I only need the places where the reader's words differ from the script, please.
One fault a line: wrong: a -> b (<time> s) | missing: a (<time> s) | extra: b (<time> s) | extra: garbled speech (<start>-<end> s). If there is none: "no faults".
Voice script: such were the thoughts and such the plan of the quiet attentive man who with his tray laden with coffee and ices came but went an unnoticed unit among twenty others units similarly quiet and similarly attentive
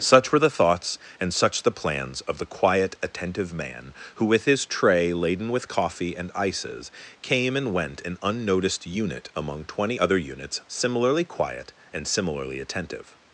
wrong: plan -> plans (1.7 s)
wrong: but -> and (7.5 s)
wrong: others -> other (10.0 s)